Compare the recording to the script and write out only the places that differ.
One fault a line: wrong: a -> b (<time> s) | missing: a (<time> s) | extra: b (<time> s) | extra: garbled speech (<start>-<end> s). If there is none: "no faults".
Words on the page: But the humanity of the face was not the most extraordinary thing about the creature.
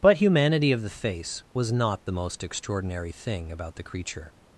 missing: the (0.2 s)